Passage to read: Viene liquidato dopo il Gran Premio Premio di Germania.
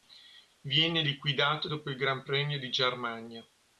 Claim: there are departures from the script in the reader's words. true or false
true